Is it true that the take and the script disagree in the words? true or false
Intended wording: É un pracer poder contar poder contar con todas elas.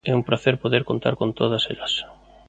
true